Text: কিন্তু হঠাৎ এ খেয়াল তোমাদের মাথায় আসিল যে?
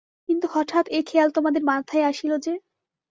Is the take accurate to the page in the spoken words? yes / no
yes